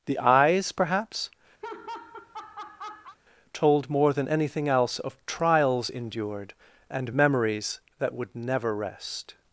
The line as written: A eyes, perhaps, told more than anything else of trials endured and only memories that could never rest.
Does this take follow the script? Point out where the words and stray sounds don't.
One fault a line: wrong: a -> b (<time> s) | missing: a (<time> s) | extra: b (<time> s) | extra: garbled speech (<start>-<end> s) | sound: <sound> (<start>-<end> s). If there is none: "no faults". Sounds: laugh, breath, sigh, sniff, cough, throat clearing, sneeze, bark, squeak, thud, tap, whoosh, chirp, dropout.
wrong: A -> The (0.1 s)
sound: laugh (1.6-3.2 s)
missing: only (7.1 s)
wrong: could -> would (8.1 s)